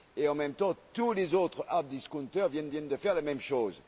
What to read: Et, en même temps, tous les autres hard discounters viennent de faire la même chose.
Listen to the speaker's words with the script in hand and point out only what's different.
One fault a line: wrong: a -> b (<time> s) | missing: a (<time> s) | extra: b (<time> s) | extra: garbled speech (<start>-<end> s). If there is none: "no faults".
extra: viennent (2.7 s)